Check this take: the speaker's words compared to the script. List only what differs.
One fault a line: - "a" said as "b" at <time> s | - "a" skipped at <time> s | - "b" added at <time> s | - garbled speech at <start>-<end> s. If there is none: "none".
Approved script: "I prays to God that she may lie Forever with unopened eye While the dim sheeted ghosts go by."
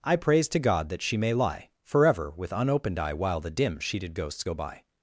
none